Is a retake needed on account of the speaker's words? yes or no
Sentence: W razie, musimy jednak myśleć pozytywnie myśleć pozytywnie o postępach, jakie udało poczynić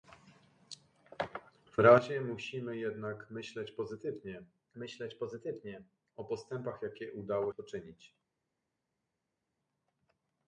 no